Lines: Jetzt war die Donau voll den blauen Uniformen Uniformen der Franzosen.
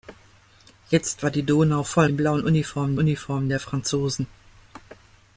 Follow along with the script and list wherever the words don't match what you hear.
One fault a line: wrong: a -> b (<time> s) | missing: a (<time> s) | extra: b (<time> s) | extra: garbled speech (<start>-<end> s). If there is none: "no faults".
no faults